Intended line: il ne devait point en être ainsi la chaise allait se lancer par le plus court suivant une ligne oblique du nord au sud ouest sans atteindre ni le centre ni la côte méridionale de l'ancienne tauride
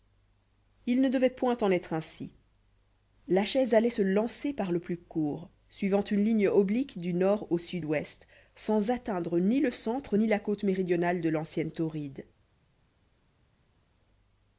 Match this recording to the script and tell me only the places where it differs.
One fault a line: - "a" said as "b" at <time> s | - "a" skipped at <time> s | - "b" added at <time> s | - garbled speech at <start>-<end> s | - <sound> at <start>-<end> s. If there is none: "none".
none